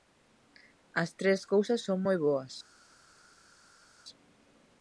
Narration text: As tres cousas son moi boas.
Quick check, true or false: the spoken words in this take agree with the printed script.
true